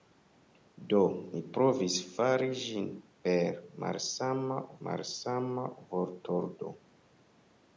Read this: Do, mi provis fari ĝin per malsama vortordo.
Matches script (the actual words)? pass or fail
fail